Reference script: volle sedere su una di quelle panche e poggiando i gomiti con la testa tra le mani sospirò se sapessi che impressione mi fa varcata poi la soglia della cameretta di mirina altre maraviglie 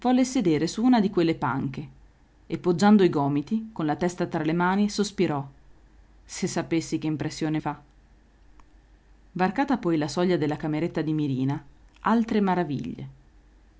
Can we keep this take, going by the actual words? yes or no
no